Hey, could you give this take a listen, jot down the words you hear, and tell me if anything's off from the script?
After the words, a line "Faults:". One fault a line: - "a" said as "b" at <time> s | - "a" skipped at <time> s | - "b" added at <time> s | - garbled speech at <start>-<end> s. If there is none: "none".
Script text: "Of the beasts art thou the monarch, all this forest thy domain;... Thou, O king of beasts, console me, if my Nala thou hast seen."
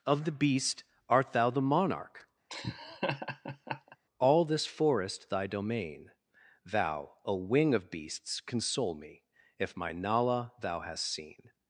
"Of the beast art thou the monarch, all this forest thy domain;... Thou, O wing of beasts, console me, if my Nala thou hast seen."
Faults:
- "beasts" said as "beast" at 0.3 s
- "king" said as "wing" at 7.4 s